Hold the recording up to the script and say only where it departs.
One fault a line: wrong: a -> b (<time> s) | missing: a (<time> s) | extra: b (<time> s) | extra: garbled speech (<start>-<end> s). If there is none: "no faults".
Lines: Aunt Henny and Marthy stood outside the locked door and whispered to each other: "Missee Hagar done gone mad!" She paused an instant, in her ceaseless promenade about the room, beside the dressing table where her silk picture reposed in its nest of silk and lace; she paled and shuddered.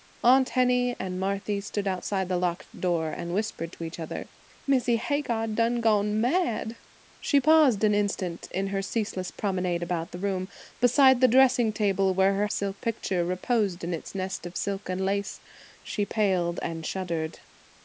no faults